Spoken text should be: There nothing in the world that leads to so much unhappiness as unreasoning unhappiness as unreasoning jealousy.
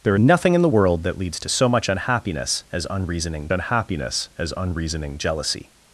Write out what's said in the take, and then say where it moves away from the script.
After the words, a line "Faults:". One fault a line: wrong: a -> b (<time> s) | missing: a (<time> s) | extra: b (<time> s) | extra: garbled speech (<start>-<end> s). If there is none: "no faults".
There nothing in the world that leads to so much unhappiness as unreasoning unhappiness as unreasoning jealousy.
Faults:
no faults